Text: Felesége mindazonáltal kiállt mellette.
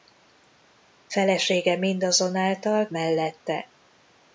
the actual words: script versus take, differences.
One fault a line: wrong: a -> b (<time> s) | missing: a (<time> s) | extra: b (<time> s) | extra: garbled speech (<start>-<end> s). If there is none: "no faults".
missing: kiállt (2.9 s)